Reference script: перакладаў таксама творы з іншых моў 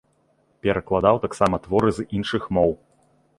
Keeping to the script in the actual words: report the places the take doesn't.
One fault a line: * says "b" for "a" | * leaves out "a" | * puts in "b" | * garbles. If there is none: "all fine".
all fine